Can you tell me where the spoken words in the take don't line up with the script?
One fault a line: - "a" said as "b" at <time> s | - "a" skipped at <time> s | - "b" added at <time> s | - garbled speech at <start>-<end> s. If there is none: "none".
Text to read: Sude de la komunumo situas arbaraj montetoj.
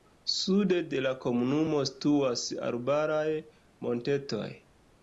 none